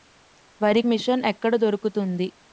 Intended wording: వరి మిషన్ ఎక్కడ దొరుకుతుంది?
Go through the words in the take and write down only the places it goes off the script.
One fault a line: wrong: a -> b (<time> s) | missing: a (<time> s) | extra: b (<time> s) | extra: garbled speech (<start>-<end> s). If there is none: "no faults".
no faults